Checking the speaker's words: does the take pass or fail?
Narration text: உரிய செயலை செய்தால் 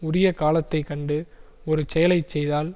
fail